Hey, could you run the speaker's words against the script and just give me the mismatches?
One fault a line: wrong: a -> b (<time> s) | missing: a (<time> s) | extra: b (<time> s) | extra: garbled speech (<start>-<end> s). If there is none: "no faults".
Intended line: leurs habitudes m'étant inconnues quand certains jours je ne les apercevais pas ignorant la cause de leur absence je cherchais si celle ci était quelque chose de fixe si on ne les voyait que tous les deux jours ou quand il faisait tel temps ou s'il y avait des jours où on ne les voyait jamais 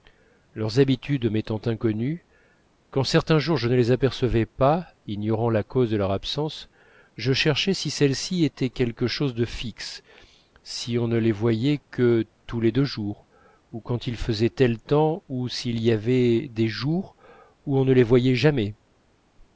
no faults